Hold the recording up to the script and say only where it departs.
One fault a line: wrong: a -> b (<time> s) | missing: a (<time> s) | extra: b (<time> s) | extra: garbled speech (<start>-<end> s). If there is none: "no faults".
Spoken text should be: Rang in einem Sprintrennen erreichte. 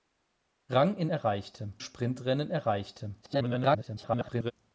wrong: einem -> erreichte (1.1 s)
extra: garbled speech (3.2-4.5 s)